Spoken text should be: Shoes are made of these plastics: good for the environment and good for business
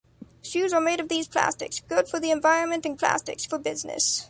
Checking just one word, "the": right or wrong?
right